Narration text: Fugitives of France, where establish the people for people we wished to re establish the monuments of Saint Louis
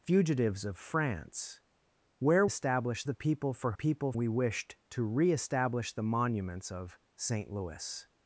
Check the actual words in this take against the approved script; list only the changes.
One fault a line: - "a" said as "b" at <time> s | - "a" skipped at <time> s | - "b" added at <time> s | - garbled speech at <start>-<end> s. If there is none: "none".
none